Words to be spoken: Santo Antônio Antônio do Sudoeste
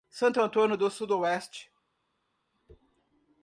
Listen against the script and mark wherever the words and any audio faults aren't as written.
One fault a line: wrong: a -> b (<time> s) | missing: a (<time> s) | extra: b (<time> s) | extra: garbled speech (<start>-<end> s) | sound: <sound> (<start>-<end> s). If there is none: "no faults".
missing: Antônio (0.8 s)